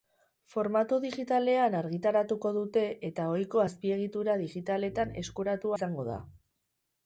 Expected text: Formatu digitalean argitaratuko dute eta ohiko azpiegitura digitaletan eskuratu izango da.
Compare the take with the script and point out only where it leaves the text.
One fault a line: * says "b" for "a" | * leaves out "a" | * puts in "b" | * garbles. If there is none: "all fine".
all fine